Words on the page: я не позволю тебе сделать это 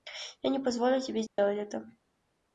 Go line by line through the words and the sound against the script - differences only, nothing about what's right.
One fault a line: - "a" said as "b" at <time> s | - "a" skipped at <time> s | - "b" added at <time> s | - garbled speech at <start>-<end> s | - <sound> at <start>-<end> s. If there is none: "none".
- dropout at 1.3-1.4 s